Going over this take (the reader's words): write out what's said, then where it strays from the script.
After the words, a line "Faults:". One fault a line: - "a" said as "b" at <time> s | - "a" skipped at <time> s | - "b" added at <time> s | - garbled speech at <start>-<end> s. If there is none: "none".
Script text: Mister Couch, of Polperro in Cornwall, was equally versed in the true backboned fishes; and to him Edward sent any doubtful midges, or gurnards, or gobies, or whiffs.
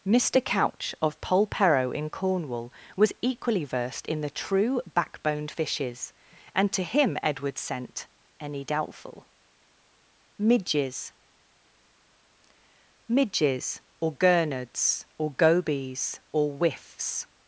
Mister Couch, of Polperro in Cornwall, was equally versed in the true backboned fishes; and to him Edward sent any doubtful midges midges, or gurnards, or gobies, or whiffs.
Faults:
- "midges" added at 13.1 s